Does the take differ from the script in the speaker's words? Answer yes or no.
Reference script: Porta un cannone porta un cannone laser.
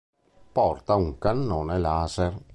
yes